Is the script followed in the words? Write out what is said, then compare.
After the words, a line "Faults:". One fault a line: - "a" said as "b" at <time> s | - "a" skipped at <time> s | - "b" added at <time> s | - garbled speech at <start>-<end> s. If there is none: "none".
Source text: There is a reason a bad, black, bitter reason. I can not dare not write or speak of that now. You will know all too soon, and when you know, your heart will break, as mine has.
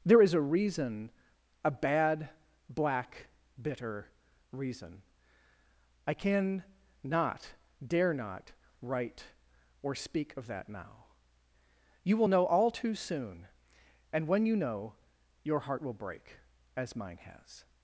There is a reason a bad, black, bitter reason. I can not dare not write or speak of that now. You will know all too soon, and when you know, your heart will break, as mine has.
Faults:
none